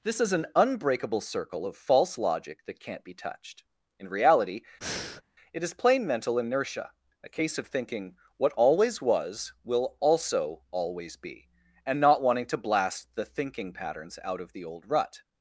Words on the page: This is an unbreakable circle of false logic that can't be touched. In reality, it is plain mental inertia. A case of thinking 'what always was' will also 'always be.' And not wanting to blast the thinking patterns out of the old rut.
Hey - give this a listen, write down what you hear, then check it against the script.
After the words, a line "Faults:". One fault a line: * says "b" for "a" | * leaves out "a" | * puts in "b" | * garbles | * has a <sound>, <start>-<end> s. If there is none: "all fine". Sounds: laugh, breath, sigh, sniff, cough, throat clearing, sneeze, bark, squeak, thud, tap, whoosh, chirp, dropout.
This is an unbreakable circle of false logic that can't be touched. In reality, it is plain mental inertia. A case of thinking 'what always was' will also 'always be.' And not wanting to blast the thinking patterns out of the old rut.
Faults:
* has a breath, 4.8-5.2 s